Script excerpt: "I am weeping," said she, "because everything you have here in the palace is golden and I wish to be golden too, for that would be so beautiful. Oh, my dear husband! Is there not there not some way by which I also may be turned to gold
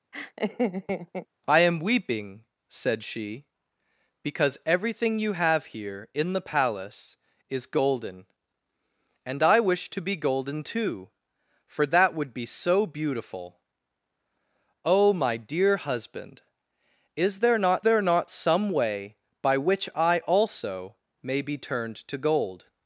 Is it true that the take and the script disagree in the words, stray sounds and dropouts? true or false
true